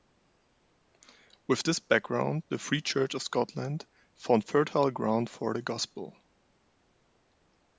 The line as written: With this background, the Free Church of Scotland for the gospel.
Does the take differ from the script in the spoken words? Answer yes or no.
yes